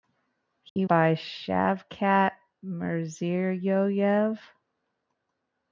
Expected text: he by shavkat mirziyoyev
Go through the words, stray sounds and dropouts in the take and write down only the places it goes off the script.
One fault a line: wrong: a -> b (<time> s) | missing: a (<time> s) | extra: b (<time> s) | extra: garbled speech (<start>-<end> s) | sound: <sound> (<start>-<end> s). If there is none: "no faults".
sound: dropout (0.7-0.8 s)